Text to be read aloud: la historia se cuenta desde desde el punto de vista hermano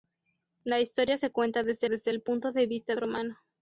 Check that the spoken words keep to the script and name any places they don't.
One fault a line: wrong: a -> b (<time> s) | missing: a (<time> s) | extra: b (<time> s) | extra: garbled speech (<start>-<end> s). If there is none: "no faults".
no faults